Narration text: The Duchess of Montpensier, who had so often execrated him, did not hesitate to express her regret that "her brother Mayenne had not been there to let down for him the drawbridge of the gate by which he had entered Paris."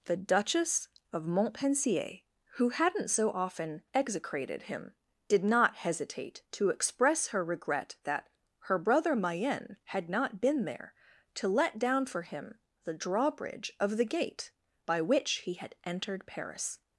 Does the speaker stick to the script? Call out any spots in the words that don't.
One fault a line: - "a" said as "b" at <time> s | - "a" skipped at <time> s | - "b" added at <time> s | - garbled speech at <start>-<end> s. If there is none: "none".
- "had" said as "hadn't" at 2.7 s